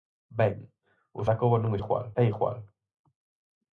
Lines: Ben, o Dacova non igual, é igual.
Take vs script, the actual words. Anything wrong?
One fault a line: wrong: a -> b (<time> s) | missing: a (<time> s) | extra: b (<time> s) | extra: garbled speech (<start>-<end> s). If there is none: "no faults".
no faults